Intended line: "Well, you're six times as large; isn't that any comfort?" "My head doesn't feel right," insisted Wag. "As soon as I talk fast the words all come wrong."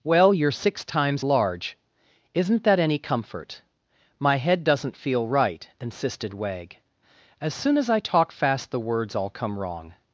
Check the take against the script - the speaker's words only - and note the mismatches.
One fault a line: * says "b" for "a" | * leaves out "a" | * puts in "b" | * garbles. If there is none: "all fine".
* leaves out "as"